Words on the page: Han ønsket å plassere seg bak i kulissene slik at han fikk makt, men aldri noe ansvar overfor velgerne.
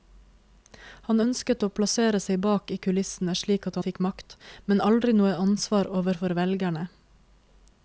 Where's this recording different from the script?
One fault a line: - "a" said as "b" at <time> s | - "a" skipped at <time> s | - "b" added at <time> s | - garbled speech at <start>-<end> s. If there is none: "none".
- "han" skipped at 3.8 s